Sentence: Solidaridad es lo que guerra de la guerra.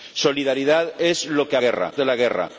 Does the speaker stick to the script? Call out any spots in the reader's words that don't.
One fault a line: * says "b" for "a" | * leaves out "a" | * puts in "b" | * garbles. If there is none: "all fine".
all fine